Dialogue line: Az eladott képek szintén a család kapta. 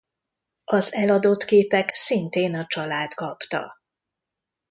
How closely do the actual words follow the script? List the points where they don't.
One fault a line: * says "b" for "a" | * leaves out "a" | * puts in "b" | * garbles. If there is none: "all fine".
all fine